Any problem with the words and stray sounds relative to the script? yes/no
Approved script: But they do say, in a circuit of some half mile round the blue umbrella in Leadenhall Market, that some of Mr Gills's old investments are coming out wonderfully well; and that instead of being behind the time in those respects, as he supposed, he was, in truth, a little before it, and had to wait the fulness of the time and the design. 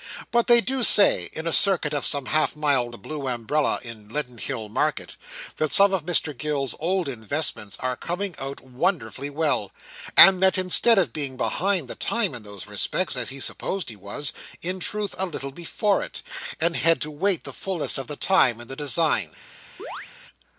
yes